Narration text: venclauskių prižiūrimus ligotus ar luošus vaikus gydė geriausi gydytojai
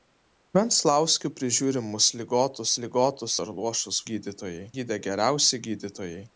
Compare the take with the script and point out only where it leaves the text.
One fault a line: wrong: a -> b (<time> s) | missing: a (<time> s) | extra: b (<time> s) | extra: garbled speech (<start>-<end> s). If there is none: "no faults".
extra: ligotus (2.8 s)
wrong: vaikus -> gydytojai (4.1 s)